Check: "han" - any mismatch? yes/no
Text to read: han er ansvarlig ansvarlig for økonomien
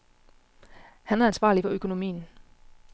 no